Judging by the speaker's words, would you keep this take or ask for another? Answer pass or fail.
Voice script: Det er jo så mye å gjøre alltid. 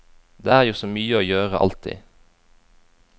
pass